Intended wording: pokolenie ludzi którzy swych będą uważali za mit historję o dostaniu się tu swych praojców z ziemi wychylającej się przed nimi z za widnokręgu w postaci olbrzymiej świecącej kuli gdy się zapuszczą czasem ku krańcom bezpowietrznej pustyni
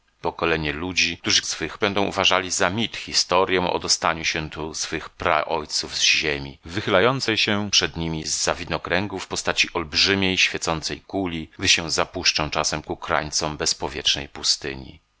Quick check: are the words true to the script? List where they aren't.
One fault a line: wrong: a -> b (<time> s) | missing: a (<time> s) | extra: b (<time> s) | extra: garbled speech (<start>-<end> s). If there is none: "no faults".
no faults